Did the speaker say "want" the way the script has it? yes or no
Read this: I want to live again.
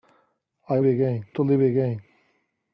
no